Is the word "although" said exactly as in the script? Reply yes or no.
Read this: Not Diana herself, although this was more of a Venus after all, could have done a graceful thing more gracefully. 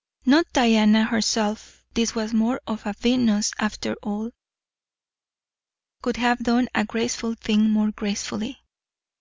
no